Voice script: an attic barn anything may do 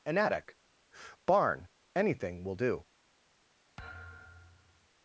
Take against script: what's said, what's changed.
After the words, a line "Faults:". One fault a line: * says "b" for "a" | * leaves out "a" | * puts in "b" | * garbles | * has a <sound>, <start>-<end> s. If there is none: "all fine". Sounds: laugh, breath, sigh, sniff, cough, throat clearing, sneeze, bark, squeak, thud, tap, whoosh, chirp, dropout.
an attic barn anything will do
Faults:
* says "will" for "may"
* has a thud, 3.8-4.9 s